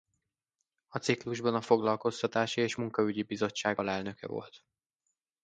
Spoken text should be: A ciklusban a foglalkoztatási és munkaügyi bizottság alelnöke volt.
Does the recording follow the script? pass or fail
pass